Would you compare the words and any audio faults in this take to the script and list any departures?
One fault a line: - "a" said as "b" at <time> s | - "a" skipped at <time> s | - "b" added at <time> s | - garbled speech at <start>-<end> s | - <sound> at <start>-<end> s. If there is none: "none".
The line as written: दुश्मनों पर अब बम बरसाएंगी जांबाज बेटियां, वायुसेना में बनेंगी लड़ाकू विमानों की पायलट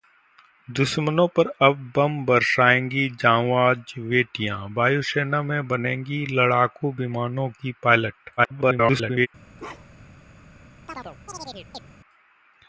- garbled speech at 8.4-9.3 s
- bark at 9.6-10.2 s
- chirp at 10.9-11.8 s